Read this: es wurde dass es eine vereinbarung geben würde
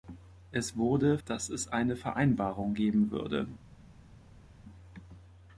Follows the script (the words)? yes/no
yes